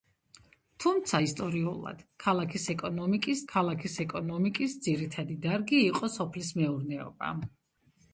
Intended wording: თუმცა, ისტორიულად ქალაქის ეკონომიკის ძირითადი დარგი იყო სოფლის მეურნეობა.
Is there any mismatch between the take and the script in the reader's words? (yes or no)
yes